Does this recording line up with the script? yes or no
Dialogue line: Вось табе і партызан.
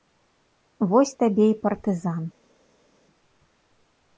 yes